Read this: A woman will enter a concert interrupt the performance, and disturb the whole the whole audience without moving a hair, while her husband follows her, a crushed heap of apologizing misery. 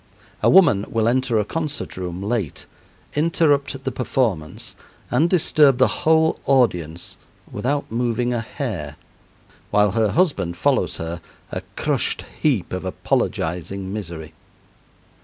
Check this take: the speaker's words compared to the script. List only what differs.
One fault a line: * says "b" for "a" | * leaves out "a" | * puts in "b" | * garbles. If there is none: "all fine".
* puts in "room late"
* leaves out "the whole"